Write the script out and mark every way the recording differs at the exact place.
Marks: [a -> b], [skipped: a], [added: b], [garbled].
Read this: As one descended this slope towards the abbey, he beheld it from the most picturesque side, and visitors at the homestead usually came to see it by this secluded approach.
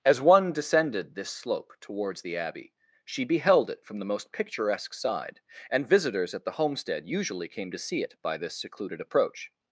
As one descended this slope towards the abbey, [he -> she] beheld it from the most picturesque side, and visitors at the homestead usually came to see it by this secluded approach.